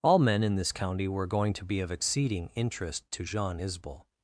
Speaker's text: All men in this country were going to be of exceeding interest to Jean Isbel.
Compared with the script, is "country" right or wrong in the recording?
wrong